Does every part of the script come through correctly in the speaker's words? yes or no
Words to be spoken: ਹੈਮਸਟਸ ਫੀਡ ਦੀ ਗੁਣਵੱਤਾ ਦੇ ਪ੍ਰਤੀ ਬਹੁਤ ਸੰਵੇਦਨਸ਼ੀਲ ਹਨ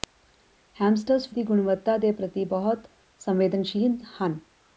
no